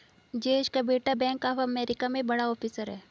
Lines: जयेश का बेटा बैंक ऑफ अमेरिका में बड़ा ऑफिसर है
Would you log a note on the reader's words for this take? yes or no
no